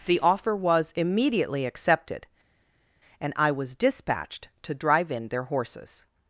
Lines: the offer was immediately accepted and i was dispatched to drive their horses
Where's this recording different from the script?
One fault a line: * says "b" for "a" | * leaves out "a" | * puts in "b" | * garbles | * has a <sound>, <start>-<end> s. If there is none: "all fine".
* puts in "in"